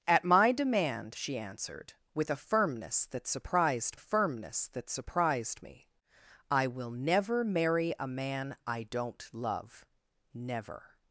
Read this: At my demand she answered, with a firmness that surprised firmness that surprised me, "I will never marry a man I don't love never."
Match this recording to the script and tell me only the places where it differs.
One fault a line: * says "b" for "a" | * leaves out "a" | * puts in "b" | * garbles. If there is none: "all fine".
all fine